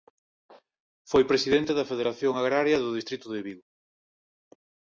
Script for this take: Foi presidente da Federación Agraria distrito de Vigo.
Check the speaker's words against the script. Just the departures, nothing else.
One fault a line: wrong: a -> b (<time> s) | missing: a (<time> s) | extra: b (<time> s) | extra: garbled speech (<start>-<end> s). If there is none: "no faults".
extra: do (2.8 s)